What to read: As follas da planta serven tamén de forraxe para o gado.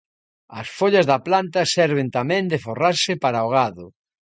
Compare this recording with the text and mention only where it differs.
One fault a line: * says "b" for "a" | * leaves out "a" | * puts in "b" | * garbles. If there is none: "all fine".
all fine